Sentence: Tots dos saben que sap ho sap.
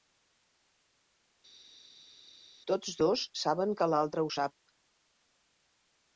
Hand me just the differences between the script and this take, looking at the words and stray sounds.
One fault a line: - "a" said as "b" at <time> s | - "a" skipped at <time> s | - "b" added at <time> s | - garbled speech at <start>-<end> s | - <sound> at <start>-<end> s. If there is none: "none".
- "sap" said as "l'altre" at 4.0 s